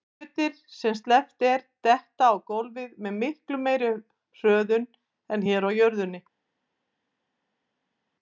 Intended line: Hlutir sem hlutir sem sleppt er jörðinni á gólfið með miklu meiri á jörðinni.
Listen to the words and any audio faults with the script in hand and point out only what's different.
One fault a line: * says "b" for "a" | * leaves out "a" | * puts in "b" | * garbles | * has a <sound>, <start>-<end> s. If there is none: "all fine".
* leaves out "hlutir sem"
* says "detta" for "jörðinni"
* puts in "hröðun en hér"